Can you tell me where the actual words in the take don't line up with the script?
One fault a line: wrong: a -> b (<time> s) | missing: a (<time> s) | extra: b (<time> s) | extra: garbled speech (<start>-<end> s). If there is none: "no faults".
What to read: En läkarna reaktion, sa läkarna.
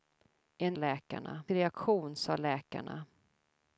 no faults